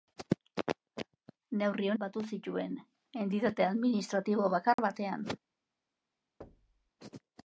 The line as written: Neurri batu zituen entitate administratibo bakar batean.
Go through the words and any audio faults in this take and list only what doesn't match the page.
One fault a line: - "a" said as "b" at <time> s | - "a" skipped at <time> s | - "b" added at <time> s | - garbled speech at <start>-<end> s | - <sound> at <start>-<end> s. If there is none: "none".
- dropout at 4.7-4.8 s
- thud at 6.4-6.9 s